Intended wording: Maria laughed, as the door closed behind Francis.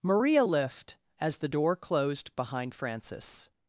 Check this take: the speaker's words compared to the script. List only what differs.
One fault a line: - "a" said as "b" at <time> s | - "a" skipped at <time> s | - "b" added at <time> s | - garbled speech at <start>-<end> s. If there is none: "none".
- "laughed" said as "lift" at 0.4 s